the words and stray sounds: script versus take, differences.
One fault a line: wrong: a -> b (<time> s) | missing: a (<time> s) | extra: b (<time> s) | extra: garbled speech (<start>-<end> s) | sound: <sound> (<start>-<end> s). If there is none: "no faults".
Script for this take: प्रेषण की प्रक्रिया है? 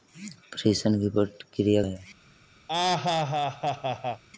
sound: laugh (2.7-4.2 s)